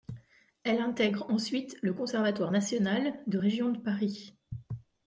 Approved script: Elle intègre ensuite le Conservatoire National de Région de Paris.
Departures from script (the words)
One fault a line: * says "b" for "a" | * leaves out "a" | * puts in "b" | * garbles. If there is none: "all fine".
all fine